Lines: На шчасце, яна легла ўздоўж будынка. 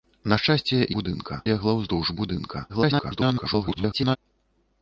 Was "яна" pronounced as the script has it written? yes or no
no